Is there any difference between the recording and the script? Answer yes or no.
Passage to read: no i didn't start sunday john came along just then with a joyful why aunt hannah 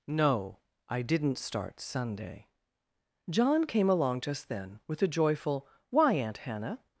no